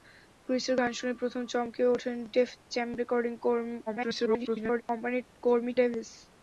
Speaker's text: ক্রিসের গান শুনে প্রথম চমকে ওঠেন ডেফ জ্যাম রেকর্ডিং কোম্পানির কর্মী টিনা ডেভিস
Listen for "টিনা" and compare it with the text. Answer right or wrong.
wrong